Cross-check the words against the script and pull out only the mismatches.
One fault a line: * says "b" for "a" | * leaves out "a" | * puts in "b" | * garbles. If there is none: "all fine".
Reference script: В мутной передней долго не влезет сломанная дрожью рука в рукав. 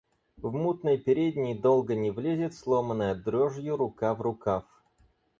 all fine